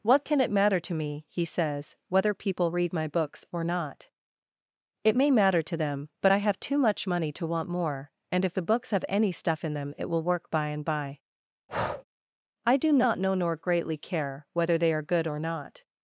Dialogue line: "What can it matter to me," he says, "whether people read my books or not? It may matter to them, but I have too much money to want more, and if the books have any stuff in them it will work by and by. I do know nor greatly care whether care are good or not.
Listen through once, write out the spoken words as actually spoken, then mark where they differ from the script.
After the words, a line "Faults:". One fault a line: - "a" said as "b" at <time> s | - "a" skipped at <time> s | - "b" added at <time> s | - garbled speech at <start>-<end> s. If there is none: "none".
"What can it matter to me," he says, "whether people read my books or not? It may matter to them, but I have too much money to want more, and if the books have any stuff in them it will work by and by. I do not know nor greatly care whether they are good or not.
Faults:
- "not" added at 12.9 s
- "care" said as "they" at 14.8 s